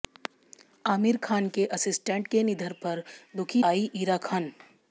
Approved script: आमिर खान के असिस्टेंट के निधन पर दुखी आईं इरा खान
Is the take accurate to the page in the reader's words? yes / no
yes